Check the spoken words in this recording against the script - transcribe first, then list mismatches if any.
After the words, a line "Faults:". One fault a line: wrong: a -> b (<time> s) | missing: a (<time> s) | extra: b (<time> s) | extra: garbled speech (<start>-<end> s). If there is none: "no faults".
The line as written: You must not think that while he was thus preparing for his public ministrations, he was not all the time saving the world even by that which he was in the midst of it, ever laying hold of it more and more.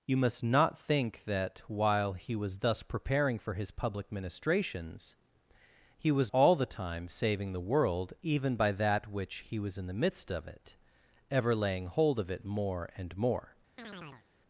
You must not think that while he was thus preparing for his public ministrations, he was all the time saving the world even by that which he was in the midst of it, ever laying hold of it more and more.
Faults:
missing: not (6.3 s)